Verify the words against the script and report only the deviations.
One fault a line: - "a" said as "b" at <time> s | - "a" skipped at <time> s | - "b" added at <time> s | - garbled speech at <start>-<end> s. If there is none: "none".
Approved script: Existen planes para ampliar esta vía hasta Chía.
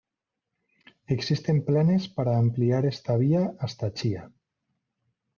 none